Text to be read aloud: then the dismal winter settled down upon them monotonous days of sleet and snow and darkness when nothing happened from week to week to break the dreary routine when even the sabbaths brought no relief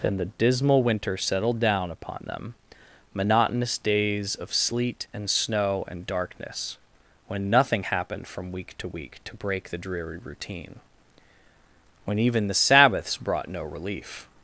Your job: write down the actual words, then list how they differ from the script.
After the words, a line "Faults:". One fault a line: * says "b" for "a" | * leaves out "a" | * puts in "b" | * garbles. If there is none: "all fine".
then the dismal winter settled down upon them monotonous days of sleet and snow and darkness when nothing happened from week to week to break the dreary routine when even the sabbaths brought no relief
Faults:
all fine